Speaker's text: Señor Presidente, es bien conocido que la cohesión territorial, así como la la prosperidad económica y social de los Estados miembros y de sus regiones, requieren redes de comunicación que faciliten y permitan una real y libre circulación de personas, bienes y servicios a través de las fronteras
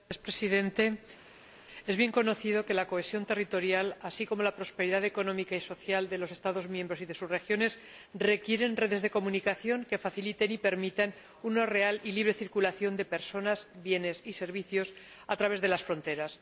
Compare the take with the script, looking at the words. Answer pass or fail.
fail